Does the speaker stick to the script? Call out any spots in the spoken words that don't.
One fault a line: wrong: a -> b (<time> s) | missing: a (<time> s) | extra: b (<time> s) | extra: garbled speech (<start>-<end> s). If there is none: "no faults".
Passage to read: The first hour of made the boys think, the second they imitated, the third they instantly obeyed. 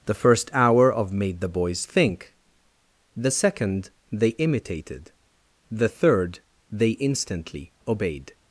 no faults